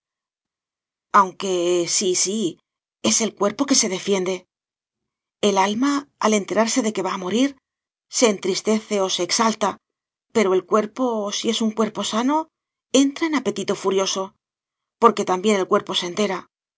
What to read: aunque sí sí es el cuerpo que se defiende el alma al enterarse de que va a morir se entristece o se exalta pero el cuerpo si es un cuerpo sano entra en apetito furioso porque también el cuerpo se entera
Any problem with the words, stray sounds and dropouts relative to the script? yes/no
no